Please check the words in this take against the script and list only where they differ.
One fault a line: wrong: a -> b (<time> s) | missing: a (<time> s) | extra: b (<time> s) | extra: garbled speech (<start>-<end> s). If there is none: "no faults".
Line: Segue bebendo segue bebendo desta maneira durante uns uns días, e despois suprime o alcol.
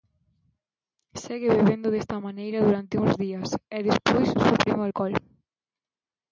missing: segue bebendo (1.9 s)
missing: uns (3.1 s)